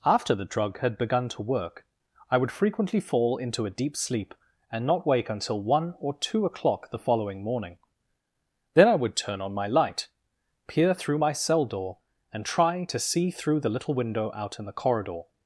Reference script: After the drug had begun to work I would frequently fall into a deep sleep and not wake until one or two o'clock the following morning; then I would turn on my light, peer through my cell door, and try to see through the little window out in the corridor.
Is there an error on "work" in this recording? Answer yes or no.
no